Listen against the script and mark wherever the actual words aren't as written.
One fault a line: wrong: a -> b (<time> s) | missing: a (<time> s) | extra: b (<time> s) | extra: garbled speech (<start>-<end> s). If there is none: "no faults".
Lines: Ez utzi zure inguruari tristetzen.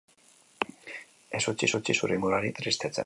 extra: utzi (1.8 s)